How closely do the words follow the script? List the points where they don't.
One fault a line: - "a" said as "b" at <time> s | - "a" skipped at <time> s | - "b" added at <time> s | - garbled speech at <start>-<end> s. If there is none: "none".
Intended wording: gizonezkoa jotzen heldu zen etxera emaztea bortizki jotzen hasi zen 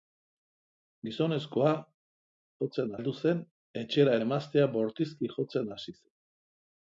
none